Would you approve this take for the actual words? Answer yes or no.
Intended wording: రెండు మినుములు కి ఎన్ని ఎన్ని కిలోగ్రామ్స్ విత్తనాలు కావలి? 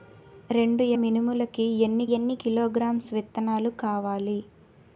yes